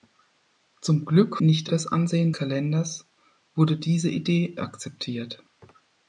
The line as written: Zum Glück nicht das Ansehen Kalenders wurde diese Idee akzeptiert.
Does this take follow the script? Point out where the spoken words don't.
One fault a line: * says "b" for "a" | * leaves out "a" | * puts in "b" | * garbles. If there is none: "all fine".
all fine